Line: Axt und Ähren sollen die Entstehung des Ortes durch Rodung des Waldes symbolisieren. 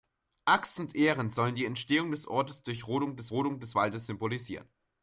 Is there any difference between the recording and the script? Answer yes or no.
yes